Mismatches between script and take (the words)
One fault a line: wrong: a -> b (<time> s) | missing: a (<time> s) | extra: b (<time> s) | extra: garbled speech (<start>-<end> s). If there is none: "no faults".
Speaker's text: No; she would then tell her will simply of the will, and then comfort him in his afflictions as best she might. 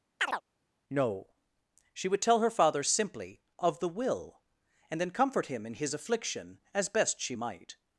missing: then (2.2 s)
wrong: will -> father (2.5 s)
wrong: afflictions -> affliction (5.9 s)